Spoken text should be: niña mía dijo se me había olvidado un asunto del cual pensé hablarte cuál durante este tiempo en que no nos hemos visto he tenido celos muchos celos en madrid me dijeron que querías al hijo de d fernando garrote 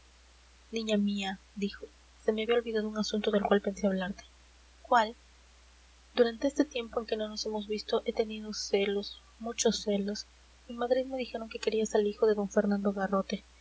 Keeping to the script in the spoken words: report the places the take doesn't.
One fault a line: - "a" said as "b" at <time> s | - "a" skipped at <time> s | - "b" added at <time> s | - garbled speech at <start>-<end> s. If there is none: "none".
none